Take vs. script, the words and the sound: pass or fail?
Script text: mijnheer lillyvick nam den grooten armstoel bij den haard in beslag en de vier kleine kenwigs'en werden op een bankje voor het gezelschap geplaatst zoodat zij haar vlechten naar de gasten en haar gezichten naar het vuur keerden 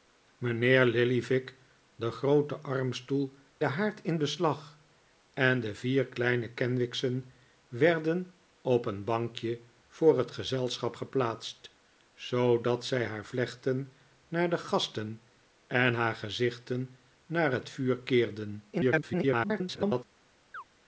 fail